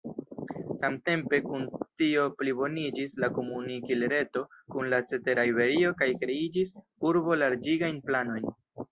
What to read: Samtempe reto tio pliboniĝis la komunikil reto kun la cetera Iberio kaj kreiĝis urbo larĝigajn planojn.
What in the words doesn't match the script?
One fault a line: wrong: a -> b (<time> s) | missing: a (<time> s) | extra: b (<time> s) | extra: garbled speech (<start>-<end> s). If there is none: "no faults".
wrong: reto -> kun (1.5 s)